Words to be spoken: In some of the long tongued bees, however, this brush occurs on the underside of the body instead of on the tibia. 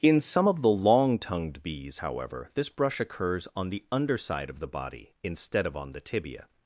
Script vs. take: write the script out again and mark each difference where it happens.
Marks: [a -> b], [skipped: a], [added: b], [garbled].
In some of the long tongued bees, however, this brush occurs on the underside of the body instead of on the tibia.